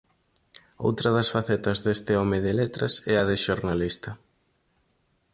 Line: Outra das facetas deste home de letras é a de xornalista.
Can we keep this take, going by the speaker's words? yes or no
yes